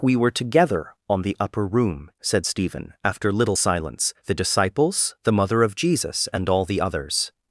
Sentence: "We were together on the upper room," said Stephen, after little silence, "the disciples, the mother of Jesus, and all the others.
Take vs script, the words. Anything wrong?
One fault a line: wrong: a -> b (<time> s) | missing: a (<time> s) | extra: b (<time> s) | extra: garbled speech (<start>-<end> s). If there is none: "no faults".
no faults